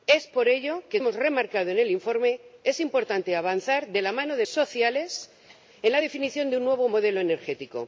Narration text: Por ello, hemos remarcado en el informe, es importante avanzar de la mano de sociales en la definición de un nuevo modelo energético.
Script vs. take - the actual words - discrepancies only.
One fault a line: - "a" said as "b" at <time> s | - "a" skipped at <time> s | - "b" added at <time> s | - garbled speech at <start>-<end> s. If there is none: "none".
none